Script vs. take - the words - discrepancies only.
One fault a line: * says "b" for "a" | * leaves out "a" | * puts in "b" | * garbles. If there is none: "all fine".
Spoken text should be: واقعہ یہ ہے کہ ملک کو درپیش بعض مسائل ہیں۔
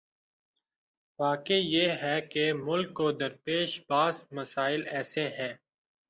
* puts in "ایسے"